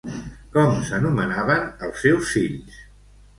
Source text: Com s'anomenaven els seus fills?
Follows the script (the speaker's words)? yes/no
yes